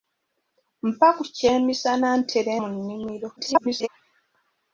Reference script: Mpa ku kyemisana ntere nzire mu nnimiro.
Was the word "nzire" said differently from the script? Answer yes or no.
yes